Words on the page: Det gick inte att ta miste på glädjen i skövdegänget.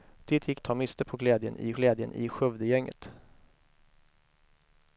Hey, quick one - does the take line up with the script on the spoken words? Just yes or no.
no